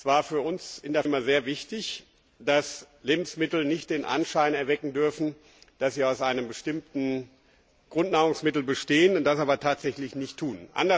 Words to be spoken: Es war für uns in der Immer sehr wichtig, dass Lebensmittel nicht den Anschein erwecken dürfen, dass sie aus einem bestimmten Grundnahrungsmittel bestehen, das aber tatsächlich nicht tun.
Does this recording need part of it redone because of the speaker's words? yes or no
no